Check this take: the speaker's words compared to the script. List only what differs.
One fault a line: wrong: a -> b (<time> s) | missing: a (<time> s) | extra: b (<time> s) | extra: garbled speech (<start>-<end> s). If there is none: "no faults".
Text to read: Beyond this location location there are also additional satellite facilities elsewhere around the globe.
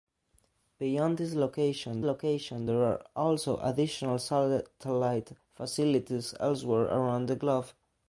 no faults